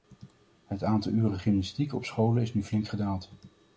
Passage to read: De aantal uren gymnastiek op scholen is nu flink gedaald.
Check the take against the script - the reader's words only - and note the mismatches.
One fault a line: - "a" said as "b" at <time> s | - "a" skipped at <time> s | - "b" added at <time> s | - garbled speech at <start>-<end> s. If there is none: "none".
- "De" said as "Het" at 0.7 s